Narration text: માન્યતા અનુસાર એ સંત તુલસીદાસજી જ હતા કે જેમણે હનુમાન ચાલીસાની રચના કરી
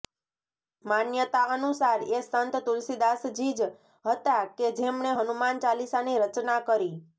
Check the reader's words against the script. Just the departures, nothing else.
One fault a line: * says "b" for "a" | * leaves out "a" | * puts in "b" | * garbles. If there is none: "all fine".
all fine